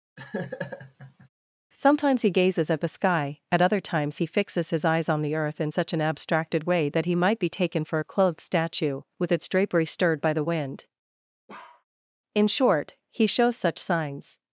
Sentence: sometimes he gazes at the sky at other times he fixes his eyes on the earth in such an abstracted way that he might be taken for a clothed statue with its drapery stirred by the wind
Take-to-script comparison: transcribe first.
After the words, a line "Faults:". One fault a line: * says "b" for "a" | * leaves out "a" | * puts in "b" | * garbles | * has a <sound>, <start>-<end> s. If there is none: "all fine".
sometimes he gazes at the sky at other times he fixes his eyes on the earth in such an abstracted way that he might be taken for a clothed statue with its drapery stirred by the wind in short he shows such signs
Faults:
* has a laugh, 0.2-1.3 s
* has a bark, 11.5-11.8 s
* puts in "in short he shows such signs"